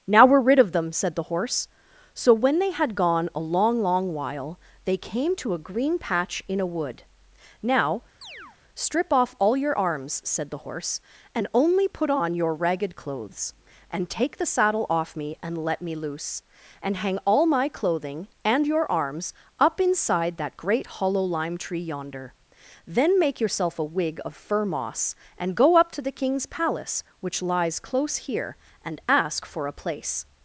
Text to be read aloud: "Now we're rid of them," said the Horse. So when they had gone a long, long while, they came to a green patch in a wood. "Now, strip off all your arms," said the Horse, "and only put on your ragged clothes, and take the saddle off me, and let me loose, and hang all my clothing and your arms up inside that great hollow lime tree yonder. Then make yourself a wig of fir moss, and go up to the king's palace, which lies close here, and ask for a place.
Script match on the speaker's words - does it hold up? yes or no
yes